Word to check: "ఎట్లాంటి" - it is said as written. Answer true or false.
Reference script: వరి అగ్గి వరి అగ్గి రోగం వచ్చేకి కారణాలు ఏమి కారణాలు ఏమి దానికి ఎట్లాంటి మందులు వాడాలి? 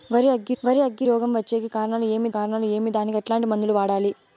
true